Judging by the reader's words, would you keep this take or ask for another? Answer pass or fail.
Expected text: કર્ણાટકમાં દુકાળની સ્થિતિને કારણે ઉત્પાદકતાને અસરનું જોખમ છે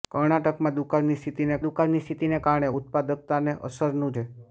fail